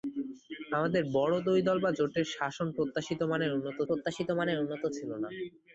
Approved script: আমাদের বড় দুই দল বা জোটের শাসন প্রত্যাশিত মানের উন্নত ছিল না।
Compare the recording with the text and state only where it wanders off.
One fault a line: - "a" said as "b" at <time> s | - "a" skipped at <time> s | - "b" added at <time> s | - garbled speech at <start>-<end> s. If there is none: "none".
- "প্রত্যাশিত মানের উন্নত" added at 3.9 s